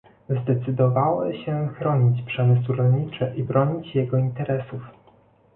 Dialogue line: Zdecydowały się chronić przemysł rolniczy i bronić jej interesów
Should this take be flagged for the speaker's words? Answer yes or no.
yes